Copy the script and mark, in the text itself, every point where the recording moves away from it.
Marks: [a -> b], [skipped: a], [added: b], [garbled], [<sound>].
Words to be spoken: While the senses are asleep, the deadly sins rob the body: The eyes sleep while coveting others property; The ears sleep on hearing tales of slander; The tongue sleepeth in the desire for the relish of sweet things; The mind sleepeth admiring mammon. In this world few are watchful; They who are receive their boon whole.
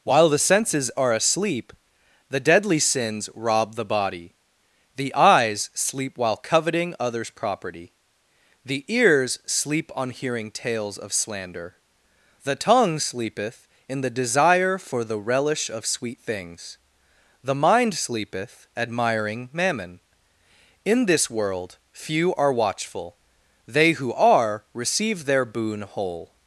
While the senses are asleep, the deadly sins rob the body: The eyes sleep while coveting others property; The ears sleep on hearing tales of slander; The tongue sleepeth in the desire for the relish of sweet things; The mind sleepeth admiring mammon. In this world few are watchful; They who are receive their boon whole.